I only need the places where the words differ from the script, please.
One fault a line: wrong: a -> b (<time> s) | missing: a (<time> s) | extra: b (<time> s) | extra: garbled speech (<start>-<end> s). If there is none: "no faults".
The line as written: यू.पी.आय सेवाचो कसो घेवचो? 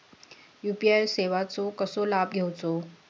extra: लाभ (2.1 s)